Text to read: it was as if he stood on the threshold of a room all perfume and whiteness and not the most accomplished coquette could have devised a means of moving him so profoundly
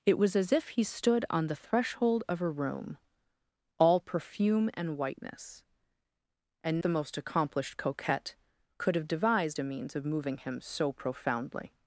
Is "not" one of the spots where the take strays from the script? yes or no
yes